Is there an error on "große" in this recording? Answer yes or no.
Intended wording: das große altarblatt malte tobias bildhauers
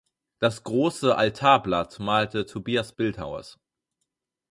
no